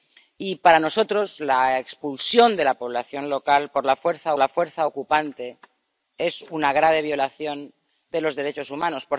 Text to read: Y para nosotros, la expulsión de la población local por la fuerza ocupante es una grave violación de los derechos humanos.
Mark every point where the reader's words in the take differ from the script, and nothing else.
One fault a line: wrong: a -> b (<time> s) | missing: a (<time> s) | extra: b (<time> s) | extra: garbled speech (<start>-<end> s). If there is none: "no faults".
extra: la fuerza (4.4 s)